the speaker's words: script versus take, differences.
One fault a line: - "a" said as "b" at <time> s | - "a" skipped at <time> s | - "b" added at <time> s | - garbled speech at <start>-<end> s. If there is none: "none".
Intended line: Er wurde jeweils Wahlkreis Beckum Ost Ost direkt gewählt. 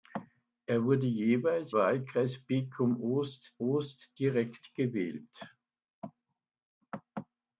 none